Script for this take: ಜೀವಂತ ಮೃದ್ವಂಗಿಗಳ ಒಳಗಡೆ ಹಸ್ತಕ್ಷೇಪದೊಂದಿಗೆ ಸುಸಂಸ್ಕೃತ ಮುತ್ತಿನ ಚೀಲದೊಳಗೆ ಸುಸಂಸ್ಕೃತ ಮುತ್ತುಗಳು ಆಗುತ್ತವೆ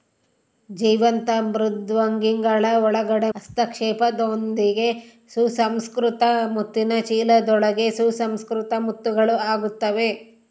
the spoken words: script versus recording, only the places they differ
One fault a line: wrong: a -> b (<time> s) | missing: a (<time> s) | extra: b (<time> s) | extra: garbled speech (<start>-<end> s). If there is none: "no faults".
no faults